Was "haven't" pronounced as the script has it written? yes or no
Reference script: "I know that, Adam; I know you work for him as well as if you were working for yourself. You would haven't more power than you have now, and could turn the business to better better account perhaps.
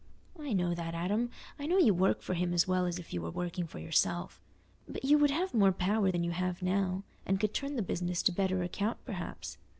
no